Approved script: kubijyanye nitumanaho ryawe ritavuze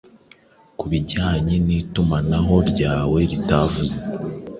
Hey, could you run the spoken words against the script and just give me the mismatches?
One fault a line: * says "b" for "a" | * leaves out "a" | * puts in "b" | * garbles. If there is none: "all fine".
all fine